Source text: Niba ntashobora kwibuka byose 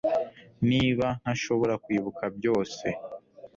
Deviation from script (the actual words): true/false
false